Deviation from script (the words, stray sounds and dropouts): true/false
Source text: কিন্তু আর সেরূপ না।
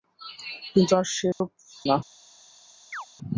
true